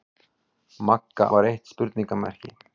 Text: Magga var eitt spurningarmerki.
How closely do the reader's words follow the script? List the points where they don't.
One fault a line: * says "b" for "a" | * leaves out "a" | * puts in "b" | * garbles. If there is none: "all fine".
all fine